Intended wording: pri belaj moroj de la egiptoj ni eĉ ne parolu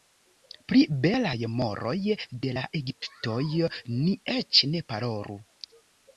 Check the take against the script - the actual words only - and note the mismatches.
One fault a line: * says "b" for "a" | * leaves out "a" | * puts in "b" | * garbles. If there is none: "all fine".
all fine